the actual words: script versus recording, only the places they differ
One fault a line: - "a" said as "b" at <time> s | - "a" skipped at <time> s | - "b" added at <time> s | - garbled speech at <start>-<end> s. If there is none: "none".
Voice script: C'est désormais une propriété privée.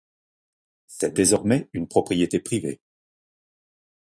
none